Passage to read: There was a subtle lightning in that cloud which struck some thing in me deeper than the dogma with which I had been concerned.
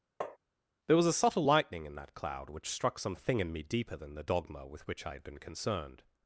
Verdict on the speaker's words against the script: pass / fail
pass